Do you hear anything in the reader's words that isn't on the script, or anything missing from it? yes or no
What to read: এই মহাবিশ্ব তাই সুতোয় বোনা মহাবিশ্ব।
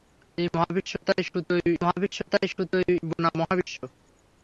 yes